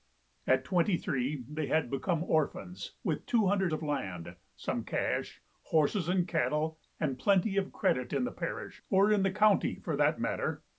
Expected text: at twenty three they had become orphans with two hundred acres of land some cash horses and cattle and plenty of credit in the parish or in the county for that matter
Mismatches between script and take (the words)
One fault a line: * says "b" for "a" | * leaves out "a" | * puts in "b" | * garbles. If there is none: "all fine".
* leaves out "acres"